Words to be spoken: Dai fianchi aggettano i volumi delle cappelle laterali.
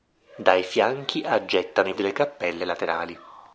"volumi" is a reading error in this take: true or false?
true